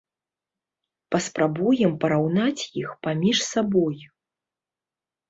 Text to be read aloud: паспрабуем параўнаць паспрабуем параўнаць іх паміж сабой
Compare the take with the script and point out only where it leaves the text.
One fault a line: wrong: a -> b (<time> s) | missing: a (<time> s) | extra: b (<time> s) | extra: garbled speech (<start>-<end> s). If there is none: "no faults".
missing: паспрабуем параўнаць (2.6 s)